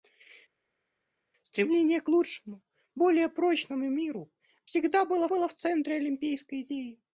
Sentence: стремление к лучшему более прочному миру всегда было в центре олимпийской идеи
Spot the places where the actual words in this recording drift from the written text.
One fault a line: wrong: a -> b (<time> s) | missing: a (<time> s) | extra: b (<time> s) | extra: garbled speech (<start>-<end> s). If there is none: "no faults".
extra: было (5.3 s)